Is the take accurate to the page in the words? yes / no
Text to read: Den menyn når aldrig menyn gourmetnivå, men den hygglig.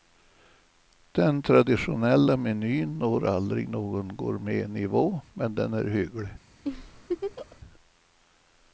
no